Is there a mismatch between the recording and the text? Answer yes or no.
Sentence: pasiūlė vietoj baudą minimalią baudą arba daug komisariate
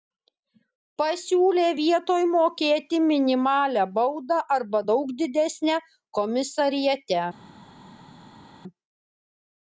yes